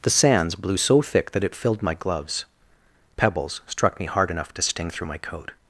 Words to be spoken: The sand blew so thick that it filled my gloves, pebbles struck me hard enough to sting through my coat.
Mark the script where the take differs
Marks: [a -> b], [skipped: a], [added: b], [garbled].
The [sand -> sands] blew so thick that it filled my gloves, pebbles struck me hard enough to sting through my coat.